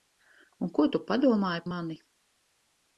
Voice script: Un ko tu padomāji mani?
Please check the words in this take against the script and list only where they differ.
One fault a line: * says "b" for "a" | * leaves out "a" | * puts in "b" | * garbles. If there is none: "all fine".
all fine